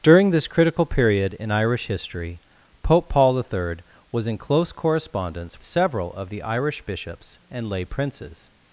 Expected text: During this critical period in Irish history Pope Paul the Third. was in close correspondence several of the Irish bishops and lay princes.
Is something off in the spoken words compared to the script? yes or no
no